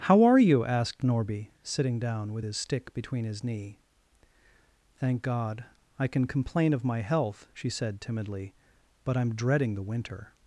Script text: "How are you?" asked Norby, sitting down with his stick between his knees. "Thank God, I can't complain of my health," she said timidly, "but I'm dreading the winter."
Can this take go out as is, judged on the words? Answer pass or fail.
fail